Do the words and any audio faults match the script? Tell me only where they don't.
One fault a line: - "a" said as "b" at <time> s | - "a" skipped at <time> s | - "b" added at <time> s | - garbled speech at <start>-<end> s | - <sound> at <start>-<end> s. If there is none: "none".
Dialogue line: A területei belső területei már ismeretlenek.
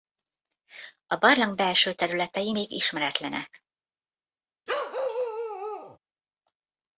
- "területei" said as "barlang" at 1.1 s
- "már" said as "még" at 2.5 s
- bark at 4.7-6.0 s